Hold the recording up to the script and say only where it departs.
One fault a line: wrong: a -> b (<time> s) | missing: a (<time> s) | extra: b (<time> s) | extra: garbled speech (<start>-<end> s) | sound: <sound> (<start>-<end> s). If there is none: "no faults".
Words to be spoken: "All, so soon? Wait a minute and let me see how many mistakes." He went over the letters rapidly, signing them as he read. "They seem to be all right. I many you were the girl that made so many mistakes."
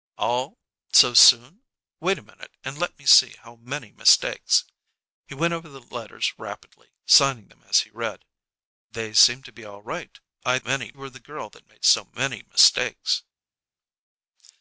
no faults